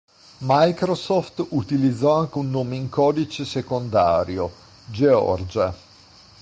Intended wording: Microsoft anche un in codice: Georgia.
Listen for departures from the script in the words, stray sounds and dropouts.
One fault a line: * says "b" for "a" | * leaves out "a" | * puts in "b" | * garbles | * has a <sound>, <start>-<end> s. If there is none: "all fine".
* puts in "utilizzò"
* puts in "nome"
* puts in "secondario"